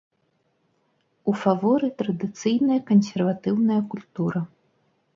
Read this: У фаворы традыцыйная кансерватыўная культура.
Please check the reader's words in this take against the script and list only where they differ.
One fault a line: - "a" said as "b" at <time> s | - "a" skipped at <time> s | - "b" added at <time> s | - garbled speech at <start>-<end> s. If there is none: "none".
none